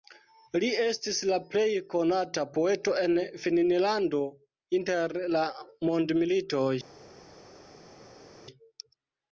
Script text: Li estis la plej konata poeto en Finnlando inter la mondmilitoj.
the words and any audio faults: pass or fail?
pass